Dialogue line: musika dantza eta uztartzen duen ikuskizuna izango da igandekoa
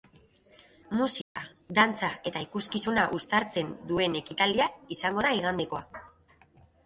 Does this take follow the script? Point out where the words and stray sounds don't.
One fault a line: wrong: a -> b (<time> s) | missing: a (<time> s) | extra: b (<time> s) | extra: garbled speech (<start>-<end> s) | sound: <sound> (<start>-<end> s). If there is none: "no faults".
sound: dropout (1.2-1.4 s)
extra: ikuskizuna (2.5 s)
wrong: ikuskizuna -> ekitaldia (4.2 s)